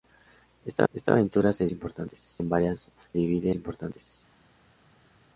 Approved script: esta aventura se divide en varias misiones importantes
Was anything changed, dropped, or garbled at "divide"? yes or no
yes